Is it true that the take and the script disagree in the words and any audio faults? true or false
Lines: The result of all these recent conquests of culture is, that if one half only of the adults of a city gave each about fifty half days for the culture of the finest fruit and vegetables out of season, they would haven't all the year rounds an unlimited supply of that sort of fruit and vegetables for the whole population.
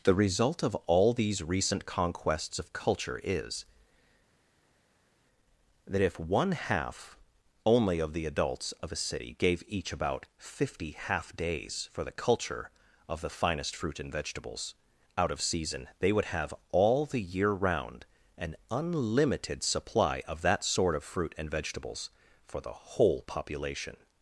true